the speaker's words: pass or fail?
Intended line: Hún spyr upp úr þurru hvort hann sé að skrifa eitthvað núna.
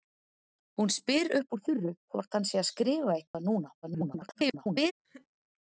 fail